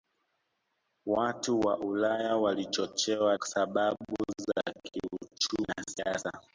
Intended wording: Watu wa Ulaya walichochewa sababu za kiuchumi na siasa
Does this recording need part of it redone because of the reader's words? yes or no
no